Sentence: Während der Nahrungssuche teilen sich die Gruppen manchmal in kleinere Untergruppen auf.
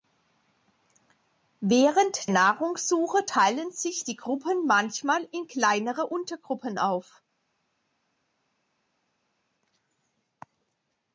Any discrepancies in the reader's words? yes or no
yes